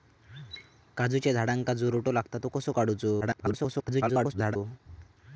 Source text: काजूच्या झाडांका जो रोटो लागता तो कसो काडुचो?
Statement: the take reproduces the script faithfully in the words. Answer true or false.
false